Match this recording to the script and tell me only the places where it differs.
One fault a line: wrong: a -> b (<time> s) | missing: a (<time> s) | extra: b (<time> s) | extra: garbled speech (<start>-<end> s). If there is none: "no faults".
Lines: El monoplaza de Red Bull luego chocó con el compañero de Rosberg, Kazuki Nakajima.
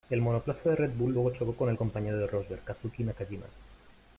no faults